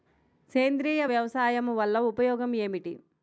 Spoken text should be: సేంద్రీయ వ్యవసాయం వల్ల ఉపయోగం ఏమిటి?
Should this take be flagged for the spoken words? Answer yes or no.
no